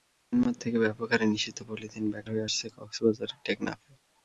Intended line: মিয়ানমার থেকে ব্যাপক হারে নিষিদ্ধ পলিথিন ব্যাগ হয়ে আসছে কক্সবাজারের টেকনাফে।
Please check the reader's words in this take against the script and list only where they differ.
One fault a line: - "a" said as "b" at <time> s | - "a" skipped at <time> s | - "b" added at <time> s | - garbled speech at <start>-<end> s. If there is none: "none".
none